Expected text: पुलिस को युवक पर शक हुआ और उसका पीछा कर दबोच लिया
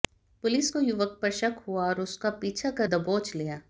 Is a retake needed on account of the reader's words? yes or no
no